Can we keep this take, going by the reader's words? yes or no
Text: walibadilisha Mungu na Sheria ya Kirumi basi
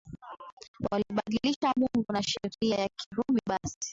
yes